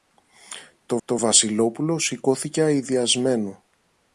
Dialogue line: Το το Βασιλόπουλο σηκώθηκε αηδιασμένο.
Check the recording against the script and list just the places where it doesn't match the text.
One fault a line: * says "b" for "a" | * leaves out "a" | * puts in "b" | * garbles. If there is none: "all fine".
all fine